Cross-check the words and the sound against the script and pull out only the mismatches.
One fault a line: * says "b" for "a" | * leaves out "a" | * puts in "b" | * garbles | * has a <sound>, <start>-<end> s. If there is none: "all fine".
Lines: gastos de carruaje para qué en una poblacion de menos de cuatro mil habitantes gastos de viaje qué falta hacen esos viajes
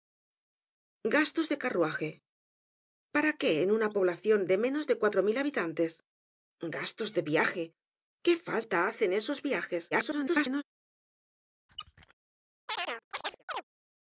* garbles
* has a squeak, 11.7-12.1 s
* has a chirp, 12.7-13.6 s